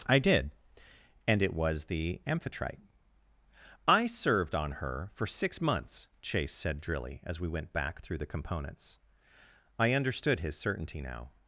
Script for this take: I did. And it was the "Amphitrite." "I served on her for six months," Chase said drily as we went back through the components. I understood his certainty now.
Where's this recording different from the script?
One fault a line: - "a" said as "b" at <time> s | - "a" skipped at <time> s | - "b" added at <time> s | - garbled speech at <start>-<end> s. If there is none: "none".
none